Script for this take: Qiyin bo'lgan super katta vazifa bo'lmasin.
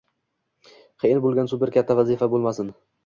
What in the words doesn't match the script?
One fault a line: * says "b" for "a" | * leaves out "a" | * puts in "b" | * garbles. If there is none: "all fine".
all fine